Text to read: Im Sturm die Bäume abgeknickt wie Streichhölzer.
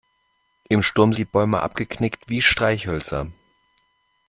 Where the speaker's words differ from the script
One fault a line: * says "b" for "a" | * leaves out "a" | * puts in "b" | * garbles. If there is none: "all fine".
all fine